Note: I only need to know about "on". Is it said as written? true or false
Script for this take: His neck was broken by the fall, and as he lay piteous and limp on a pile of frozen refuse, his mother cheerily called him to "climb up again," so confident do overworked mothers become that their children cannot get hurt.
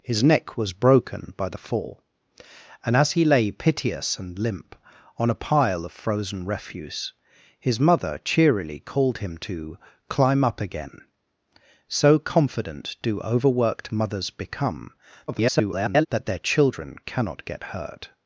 true